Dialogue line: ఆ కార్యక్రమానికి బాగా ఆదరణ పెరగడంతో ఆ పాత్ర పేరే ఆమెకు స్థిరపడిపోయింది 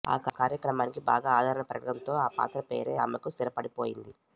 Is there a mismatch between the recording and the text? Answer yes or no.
no